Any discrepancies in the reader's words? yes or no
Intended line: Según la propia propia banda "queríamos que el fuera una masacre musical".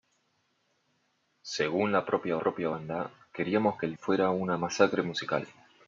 no